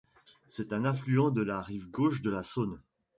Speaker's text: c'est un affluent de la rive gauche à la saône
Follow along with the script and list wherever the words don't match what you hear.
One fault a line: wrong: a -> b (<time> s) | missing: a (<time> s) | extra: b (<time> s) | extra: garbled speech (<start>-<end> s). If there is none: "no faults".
wrong: à -> de (2.2 s)